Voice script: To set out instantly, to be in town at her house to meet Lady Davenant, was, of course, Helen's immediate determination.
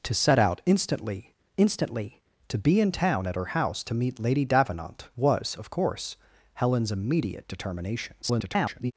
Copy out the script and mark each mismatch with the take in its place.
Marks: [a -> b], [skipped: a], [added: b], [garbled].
To set out instantly, [added: instantly] to be in town at her house to meet Lady Davenant, was, of course, Helen's immediate determination. [garbled]